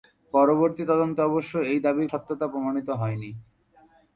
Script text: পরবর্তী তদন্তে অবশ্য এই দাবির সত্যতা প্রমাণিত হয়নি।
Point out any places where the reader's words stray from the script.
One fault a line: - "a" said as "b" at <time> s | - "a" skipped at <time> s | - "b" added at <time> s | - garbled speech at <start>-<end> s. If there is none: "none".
none